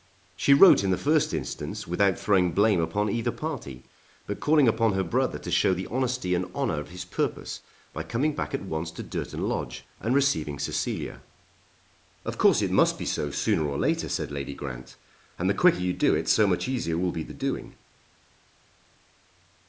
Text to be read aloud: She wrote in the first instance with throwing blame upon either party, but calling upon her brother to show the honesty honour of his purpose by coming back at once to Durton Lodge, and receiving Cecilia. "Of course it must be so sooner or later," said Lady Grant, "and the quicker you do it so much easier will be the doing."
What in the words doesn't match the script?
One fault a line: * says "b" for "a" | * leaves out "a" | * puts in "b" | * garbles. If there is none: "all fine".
* says "without" for "with"
* puts in "and"